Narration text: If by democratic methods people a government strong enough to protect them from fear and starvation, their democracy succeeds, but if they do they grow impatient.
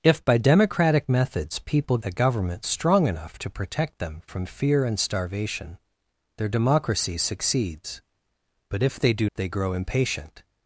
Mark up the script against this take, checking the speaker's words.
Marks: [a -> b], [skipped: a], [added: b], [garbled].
If by democratic methods people a government strong enough to protect them from fear and starvation, their democracy succeeds, but if they do they grow impatient.